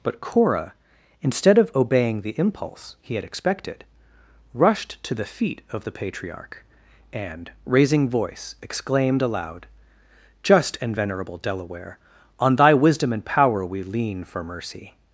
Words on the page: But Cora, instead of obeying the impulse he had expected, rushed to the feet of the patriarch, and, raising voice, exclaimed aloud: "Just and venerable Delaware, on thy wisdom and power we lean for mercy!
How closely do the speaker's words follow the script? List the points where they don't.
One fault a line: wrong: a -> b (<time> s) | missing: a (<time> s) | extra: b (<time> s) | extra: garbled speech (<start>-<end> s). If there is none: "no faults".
no faults